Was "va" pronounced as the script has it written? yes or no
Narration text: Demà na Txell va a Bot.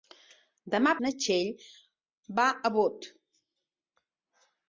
yes